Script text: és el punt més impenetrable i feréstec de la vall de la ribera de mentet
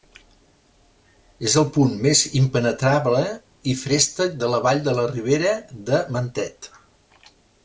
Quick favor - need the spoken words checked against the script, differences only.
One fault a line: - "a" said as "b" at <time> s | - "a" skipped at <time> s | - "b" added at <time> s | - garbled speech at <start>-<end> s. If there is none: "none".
none